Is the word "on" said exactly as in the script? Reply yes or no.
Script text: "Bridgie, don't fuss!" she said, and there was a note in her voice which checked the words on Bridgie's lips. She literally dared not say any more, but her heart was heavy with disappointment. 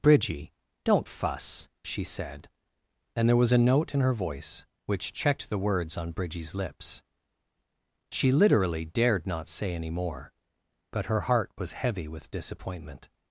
yes